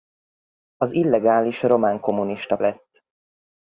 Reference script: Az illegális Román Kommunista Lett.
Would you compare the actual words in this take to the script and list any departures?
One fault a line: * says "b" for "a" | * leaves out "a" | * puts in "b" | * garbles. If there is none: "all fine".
all fine